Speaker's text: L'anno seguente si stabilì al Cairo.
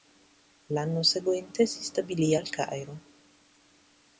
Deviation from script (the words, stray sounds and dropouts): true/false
false